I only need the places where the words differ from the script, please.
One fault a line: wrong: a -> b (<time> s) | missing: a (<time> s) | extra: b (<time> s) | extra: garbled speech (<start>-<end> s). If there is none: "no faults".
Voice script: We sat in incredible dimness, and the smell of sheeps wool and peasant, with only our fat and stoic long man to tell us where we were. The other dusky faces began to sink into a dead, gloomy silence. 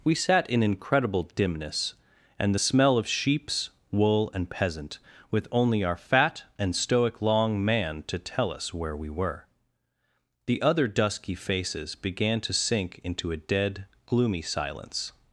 no faults